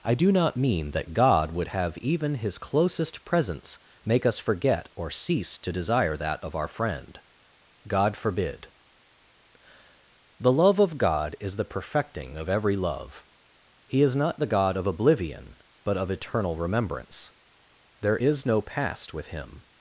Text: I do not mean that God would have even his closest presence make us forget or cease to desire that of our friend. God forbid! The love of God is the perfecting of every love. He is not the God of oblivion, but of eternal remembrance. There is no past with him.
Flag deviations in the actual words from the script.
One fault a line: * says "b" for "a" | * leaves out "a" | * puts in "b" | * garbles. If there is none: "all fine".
all fine